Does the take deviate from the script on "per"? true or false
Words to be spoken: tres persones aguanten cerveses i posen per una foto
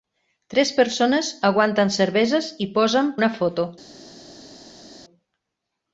true